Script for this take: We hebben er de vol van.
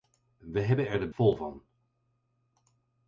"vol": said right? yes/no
yes